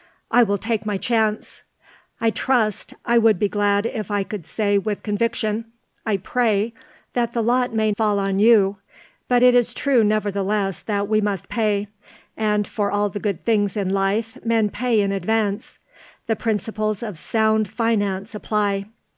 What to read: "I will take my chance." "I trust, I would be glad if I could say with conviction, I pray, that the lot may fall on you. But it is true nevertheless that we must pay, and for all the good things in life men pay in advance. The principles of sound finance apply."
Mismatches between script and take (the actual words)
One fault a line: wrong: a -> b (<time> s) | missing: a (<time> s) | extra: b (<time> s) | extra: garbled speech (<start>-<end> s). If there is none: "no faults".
no faults